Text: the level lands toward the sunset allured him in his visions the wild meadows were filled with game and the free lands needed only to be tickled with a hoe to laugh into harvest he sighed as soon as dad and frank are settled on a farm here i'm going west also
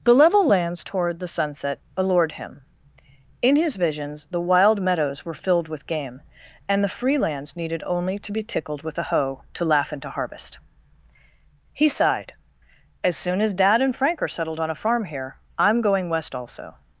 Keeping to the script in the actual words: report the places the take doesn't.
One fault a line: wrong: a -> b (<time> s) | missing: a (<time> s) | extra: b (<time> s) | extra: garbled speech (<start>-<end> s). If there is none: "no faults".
no faults